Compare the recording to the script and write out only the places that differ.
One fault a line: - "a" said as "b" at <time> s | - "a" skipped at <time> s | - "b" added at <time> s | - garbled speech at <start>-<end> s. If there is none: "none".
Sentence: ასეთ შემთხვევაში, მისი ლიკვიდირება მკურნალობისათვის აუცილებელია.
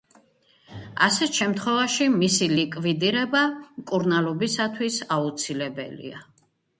none